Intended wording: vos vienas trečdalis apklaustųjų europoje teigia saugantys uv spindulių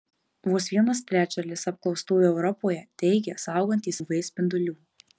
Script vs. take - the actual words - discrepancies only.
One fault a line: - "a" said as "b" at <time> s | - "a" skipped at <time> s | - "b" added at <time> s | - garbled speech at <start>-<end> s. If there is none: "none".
none